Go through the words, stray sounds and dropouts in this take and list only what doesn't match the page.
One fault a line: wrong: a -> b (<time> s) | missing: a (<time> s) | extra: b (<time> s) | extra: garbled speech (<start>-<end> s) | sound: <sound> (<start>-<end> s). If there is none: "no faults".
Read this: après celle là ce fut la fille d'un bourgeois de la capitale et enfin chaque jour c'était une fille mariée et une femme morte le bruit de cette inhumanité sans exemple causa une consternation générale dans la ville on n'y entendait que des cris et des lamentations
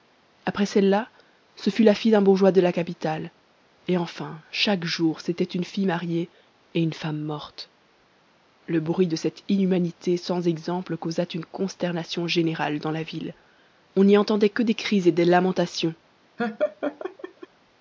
sound: laugh (16.4-17.5 s)